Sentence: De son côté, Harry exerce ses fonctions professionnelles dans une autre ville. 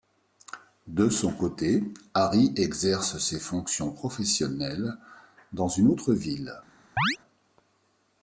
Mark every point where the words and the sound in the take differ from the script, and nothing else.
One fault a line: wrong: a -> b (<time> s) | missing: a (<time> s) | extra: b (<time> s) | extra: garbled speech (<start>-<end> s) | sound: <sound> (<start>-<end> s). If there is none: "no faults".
sound: chirp (7.0-7.2 s)